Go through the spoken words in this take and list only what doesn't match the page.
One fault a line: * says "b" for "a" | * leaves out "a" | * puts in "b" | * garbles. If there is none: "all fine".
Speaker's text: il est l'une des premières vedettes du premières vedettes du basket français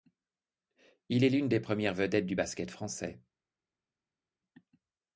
* leaves out "premières vedettes du"